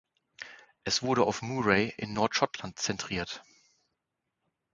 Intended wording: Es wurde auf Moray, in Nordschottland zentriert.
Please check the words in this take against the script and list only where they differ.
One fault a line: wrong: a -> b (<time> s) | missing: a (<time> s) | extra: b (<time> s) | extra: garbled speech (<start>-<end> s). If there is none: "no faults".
no faults